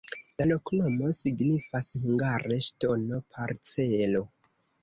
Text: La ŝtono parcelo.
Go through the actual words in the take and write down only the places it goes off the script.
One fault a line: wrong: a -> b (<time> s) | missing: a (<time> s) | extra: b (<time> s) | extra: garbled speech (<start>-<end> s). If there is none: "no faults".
extra: loknomo signifas hungare (0.5 s)